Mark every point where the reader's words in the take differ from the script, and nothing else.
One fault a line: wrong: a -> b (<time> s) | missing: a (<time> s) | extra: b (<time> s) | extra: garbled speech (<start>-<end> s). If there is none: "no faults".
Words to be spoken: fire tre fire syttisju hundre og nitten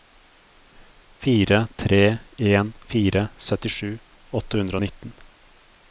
extra: en (2.4 s)
extra: åtte (4.4 s)